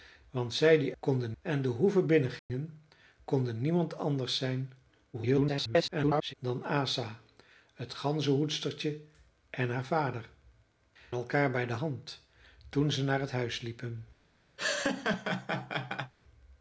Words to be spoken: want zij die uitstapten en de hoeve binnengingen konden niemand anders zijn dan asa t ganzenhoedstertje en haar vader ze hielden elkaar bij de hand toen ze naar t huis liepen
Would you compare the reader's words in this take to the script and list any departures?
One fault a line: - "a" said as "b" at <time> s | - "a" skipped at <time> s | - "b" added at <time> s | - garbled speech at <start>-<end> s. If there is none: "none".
- "uitstapten" said as "konden" at 1.0 s
- garbled speech at 5.1-6.3 s
- "ze hielden" skipped at 10.3 s